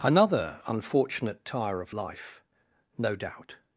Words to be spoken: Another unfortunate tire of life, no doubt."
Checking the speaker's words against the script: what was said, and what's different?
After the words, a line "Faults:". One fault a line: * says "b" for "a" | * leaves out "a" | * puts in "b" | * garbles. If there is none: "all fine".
Another unfortunate tire of life, no doubt."
Faults:
all fine